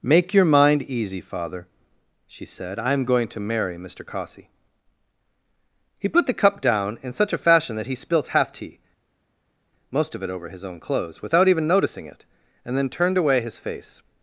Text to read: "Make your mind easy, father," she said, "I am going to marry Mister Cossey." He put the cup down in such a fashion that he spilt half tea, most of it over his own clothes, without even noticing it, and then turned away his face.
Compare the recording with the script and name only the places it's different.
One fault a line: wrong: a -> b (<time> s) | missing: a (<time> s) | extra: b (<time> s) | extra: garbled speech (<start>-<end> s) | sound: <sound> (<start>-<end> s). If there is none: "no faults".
no faults